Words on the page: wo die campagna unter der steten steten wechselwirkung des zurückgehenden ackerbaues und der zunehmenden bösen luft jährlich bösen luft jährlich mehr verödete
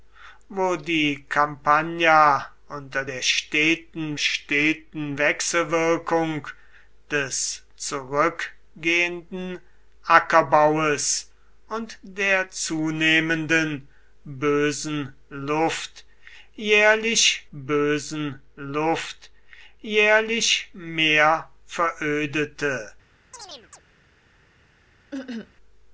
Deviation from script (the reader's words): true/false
false